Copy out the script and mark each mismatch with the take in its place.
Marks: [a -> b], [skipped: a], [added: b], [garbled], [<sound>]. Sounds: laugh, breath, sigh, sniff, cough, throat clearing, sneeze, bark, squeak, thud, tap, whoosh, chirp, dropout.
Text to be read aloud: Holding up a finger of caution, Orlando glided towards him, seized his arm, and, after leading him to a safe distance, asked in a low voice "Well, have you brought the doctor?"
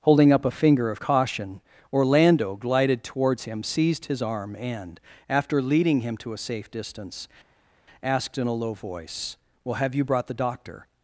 Holding up a finger of caution, Orlando glided towards him, seized his arm, and, after leading him to a safe distance, asked in a low voice "Well, have you brought the doctor?"